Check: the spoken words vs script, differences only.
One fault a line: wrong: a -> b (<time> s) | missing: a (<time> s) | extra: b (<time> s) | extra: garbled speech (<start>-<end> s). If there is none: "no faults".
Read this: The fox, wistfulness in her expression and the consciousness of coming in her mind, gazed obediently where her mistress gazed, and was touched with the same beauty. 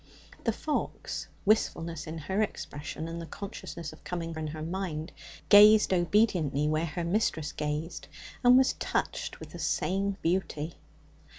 no faults